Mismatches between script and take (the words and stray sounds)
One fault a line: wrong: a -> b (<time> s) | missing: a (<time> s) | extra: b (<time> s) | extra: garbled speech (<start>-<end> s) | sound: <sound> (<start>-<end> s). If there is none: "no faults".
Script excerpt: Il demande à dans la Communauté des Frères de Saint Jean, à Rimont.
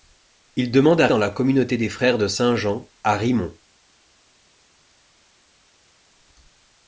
no faults